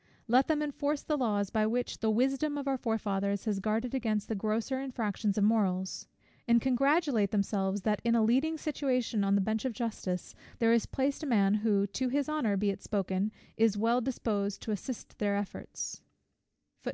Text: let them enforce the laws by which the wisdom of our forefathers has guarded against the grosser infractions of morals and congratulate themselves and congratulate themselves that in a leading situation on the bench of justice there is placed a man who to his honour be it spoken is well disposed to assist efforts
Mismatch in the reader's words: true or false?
true